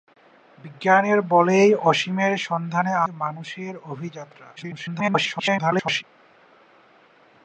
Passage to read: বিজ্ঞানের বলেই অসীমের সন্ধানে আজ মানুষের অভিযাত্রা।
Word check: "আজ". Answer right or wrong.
wrong